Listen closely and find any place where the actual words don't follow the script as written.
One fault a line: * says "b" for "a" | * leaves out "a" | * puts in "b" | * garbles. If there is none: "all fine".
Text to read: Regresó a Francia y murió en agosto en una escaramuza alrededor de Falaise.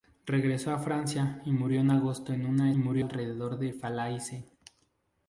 * says "murió" for "escaramuza"